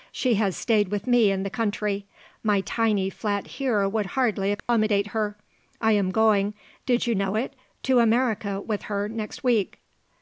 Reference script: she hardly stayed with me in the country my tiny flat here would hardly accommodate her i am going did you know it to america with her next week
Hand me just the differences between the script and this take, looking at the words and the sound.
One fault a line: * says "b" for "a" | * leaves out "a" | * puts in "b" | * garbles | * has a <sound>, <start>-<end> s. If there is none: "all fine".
* says "has" for "hardly"
* has a dropout, 4.6-4.7 s